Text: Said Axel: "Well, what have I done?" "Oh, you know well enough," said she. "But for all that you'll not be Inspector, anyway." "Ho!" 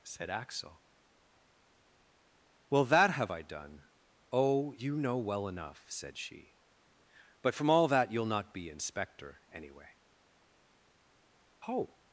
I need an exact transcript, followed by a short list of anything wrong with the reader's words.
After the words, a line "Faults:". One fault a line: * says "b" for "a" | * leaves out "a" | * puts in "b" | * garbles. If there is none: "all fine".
Said Axel: "Well, that have I done?" "Oh, you know well enough," said she. "But from all that you'll not be Inspector, anyway." "Ho!"
Faults:
* says "that" for "what"
* says "from" for "for"